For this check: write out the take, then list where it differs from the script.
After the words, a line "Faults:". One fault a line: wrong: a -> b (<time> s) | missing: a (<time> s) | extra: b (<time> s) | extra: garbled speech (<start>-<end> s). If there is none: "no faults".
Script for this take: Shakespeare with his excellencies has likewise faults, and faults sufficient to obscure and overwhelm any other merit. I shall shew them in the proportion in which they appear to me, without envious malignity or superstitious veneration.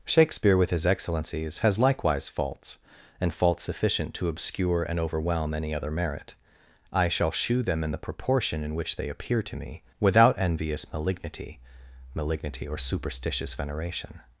Shakespeare with his excellencies has likewise faults, and faults sufficient to obscure and overwhelm any other merit. I shall shew them in the proportion in which they appear to me, without envious malignity malignity or superstitious veneration.
Faults:
extra: malignity (12.1 s)